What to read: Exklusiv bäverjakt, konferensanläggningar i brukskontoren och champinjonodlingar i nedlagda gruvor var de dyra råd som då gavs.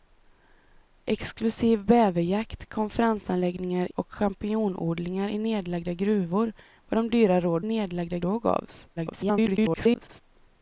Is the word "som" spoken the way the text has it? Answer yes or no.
no